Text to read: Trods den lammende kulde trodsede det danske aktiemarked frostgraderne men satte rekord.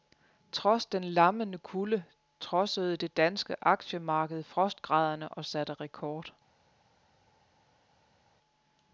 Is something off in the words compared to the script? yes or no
yes